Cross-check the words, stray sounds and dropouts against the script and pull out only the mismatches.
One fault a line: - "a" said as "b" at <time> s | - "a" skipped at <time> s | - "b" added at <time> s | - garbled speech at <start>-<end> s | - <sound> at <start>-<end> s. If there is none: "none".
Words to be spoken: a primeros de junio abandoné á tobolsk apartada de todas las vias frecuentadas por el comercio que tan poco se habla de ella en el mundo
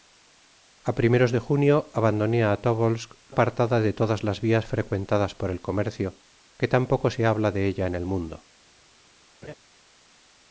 - laugh at 9.4-9.5 s